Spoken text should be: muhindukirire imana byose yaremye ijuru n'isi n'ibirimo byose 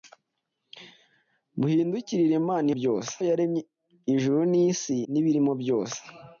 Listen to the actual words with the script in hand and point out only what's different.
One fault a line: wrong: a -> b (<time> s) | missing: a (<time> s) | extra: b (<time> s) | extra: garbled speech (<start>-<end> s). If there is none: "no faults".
no faults